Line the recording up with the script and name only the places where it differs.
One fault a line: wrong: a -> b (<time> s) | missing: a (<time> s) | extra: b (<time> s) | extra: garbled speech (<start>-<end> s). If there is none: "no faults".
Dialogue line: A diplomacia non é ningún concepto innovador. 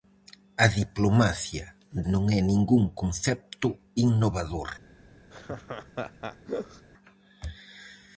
no faults